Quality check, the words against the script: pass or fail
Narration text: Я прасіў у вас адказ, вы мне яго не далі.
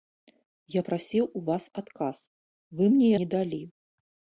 fail